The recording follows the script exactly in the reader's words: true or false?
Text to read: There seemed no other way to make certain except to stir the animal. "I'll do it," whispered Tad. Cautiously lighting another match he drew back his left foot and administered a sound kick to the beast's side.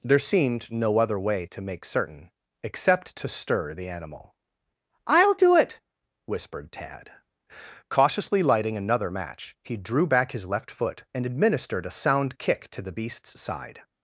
true